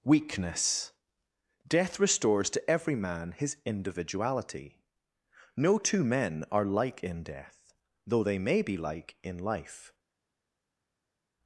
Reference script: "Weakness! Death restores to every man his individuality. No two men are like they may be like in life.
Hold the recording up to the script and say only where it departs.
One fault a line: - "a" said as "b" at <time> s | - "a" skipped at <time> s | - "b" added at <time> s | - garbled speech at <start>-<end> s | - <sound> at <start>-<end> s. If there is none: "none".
- "in death though" added at 7.0 s